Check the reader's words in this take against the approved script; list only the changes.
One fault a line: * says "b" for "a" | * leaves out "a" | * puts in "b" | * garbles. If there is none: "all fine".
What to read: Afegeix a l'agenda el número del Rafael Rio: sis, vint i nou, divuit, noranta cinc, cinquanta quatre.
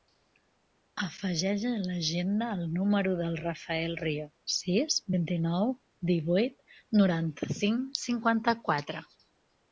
all fine